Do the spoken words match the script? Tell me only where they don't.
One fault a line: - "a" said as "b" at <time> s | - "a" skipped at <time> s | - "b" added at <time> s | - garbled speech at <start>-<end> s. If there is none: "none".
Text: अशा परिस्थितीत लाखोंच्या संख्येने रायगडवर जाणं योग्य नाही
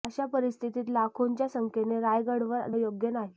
- "जाणं" skipped at 2.7 s